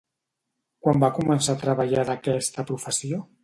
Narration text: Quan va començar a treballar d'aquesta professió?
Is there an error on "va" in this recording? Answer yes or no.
no